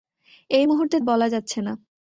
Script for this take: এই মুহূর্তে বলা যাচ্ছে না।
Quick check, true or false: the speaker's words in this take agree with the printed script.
true